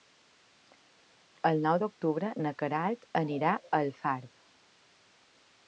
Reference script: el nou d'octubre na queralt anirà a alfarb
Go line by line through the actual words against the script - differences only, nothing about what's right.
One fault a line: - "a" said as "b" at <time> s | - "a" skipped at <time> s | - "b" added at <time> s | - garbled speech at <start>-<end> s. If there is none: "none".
none